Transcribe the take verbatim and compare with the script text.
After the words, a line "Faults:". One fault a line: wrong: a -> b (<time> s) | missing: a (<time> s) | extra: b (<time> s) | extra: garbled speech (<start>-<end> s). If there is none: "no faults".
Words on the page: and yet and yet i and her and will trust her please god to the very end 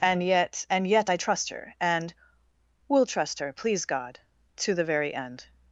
and yet and yet i trust her and will trust her please god to the very end
Faults:
wrong: and -> trust (1.2 s)